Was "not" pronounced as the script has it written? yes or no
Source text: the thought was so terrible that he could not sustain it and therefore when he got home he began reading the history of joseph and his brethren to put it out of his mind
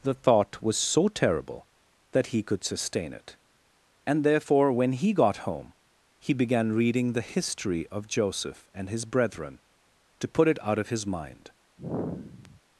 no